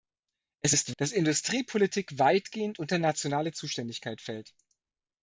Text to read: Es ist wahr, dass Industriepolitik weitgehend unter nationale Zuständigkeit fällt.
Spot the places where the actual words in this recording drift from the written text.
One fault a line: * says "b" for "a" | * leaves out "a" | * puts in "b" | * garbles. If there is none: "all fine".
* leaves out "wahr"